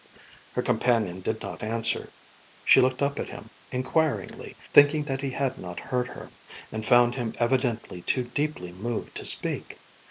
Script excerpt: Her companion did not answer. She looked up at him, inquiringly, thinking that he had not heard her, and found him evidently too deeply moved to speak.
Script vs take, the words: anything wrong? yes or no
no